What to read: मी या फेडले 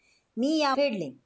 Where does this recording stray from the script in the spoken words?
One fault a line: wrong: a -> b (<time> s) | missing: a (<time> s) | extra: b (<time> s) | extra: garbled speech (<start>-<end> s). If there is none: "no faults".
no faults